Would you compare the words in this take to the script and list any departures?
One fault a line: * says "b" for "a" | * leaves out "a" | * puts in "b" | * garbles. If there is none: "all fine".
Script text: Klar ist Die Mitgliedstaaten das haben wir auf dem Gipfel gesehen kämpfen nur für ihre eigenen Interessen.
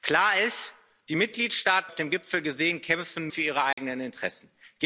* leaves out "das haben wir"
* leaves out "nur"